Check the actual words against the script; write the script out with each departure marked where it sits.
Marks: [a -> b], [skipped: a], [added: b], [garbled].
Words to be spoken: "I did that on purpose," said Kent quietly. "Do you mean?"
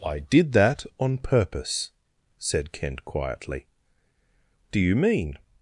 "I did that on purpose," said Kent quietly. "Do you mean?"